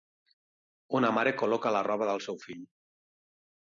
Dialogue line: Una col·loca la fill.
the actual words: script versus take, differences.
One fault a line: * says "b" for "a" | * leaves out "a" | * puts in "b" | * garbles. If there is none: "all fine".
* puts in "mare"
* puts in "roba del seu"